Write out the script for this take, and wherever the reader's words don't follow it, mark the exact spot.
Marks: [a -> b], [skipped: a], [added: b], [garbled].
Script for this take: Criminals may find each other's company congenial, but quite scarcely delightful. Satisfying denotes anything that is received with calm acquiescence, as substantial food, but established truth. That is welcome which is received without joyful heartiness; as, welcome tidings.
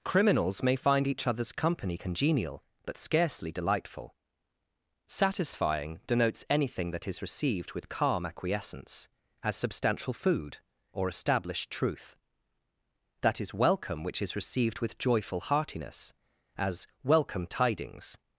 Criminals may find each other's company congenial, but [skipped: quite] scarcely delightful. Satisfying denotes anything that is received with calm acquiescence, as substantial food, [but -> or] established truth. That is welcome which is received [without -> with] joyful heartiness; as, welcome tidings.